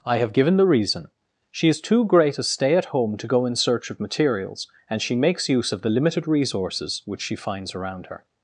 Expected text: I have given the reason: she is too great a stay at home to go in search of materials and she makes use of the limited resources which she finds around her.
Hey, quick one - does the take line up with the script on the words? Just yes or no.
yes